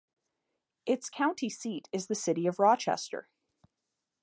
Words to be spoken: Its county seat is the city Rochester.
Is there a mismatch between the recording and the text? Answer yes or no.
yes